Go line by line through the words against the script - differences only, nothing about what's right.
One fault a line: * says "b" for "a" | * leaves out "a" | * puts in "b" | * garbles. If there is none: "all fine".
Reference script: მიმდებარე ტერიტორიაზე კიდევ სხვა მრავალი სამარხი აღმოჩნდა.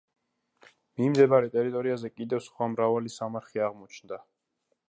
all fine